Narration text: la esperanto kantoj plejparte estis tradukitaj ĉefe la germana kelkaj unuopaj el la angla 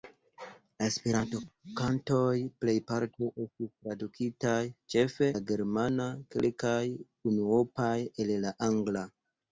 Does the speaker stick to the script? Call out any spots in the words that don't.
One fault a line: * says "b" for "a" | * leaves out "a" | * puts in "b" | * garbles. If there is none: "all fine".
all fine